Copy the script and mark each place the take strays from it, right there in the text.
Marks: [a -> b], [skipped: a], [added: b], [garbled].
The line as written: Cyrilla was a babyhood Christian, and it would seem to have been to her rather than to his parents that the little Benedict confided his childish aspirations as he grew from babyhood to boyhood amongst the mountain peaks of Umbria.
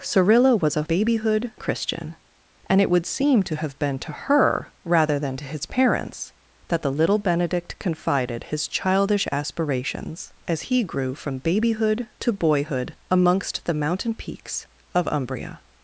Cyrilla was a babyhood Christian, and it would seem to have been to her rather than to his parents that the little Benedict confided his childish aspirations as he grew from babyhood to boyhood amongst the mountain peaks of Umbria.